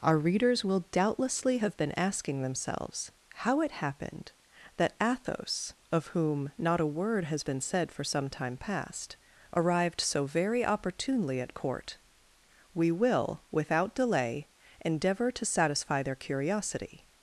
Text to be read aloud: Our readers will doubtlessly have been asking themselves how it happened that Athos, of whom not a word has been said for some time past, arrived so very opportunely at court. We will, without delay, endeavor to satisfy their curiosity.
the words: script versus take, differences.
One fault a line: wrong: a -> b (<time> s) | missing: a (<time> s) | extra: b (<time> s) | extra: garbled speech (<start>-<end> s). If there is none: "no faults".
no faults